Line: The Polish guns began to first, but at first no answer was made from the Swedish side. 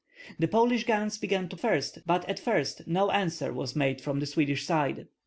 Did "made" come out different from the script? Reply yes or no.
no